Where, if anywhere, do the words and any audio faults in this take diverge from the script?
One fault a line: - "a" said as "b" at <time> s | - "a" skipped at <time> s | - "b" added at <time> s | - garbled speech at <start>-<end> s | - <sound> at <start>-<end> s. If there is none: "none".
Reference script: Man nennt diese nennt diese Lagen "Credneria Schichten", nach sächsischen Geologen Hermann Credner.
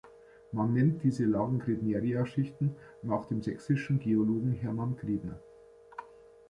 - "nennt diese" skipped at 1.2 s
- "dem" added at 3.3 s